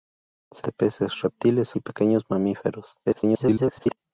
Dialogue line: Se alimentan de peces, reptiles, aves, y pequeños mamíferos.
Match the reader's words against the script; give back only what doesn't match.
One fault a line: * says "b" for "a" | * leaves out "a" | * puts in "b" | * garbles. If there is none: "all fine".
* leaves out "alimentan"
* leaves out "aves"
* garbles